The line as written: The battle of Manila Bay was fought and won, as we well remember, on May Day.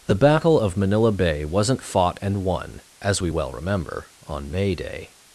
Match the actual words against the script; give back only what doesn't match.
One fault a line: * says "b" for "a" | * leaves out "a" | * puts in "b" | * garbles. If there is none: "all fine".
* says "wasn't" for "was"